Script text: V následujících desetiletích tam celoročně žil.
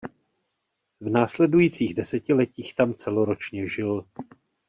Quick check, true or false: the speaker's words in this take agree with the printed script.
true